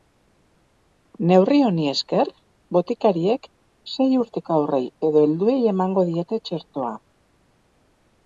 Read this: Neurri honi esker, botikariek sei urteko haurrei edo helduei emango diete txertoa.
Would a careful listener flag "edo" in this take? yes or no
no